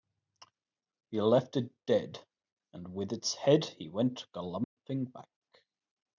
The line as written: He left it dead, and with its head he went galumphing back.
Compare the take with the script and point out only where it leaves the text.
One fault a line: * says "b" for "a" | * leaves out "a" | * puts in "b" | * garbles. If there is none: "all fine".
all fine